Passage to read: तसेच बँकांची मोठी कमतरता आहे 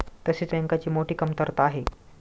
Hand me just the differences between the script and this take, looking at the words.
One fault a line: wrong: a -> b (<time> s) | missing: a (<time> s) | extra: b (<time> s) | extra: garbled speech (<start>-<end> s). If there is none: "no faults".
no faults